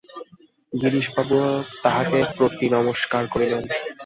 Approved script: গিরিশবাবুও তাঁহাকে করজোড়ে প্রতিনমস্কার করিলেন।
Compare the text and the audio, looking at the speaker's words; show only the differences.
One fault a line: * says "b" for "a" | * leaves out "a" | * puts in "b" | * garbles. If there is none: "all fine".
* leaves out "করজোড়ে"